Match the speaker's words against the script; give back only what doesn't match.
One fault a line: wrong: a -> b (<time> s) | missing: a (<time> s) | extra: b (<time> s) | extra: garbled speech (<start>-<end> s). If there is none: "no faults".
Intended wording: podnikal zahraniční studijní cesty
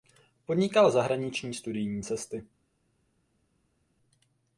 no faults